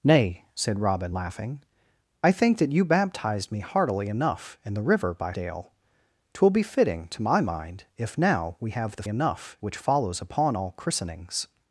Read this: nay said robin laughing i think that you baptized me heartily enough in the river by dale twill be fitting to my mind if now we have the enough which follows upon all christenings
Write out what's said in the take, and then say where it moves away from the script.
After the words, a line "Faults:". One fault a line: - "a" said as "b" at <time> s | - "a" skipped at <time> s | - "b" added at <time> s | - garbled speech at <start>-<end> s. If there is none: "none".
nay said robin laughing i think that you baptized me heartily enough in the river by dale twill be fitting to my mind if now we have the enough which follows upon all christenings
Faults:
none